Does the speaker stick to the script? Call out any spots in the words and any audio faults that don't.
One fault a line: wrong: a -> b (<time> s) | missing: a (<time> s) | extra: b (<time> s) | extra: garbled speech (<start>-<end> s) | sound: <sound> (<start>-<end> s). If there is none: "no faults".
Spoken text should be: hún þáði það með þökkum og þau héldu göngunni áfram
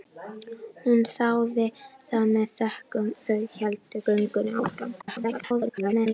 missing: og (3.1 s)
extra: garbled speech (5.0-6.1 s)